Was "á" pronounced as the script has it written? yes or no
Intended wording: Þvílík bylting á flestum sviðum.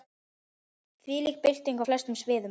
yes